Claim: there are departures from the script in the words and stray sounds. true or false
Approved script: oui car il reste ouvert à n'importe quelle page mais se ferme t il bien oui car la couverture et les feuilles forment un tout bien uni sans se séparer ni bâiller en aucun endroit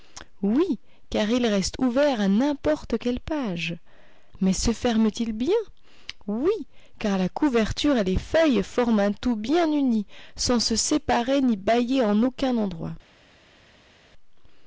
false